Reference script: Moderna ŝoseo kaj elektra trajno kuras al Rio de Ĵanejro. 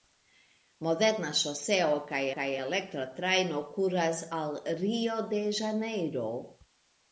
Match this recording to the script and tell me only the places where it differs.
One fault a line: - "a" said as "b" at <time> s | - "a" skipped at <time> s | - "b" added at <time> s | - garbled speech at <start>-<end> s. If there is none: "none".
- "kaj" added at 2.4 s